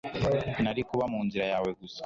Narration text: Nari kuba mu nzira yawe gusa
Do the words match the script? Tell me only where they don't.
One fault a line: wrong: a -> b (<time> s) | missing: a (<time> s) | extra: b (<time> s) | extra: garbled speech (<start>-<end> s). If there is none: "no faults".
no faults